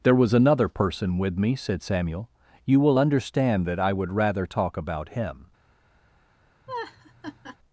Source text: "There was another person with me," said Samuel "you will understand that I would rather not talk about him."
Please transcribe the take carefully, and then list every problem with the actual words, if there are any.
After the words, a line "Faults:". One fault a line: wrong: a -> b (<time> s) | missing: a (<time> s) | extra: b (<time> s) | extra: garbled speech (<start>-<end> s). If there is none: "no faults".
"There was another person with me," said Samuel "you will understand that I would rather talk about him."
Faults:
missing: not (4.5 s)